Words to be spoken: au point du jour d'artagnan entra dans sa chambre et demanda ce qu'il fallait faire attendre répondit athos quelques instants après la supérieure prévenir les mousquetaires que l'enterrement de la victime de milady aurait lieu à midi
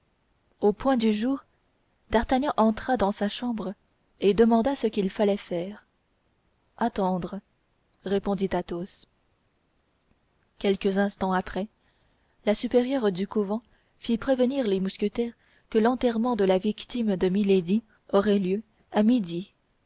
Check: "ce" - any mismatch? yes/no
no